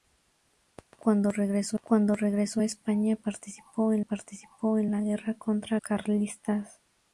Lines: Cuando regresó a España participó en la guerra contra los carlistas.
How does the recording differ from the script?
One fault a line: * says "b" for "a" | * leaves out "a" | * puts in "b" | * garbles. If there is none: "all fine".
* puts in "cuando regresó"
* puts in "participó en"
* leaves out "los"